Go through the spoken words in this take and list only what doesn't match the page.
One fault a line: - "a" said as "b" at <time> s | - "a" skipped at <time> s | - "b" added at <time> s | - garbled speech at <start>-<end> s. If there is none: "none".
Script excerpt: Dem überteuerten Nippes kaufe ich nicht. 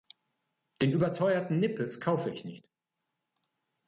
- "Dem" said as "Den" at 0.8 s